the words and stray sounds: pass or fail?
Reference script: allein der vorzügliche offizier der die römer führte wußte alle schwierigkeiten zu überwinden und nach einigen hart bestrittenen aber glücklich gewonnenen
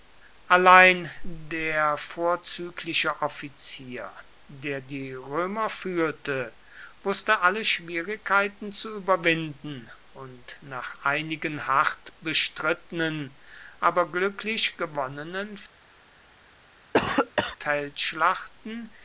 fail